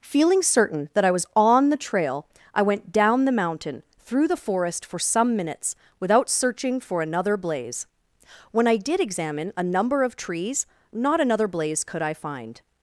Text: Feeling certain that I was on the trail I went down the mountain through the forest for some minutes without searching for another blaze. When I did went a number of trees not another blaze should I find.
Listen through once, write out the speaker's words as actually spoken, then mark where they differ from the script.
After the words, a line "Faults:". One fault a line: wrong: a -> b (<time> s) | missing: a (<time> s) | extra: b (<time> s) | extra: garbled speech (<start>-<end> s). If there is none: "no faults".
Feeling certain that I was on the trail I went down the mountain through the forest for some minutes without searching for another blaze. When I did examine a number of trees not another blaze could I find.
Faults:
wrong: went -> examine (9.0 s)
wrong: should -> could (11.8 s)